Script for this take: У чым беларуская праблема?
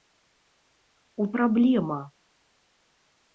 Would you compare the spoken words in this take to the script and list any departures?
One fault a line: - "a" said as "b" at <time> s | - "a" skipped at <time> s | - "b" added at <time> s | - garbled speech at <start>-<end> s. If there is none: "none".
- "чым беларуская" skipped at 1.3 s